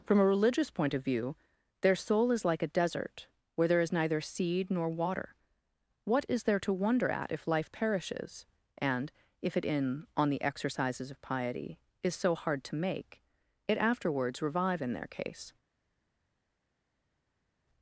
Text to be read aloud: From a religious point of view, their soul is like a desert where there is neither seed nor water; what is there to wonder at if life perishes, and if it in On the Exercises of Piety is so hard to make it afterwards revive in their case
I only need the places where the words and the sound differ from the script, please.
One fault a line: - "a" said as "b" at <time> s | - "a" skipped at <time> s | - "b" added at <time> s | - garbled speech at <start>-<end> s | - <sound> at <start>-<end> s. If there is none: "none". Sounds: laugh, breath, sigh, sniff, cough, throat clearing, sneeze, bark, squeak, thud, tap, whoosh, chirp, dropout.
none